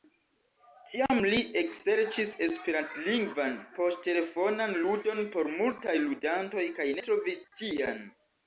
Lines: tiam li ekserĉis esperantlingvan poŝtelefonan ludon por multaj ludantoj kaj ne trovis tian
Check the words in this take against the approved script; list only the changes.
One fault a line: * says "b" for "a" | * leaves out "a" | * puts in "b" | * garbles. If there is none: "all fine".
* leaves out "ne"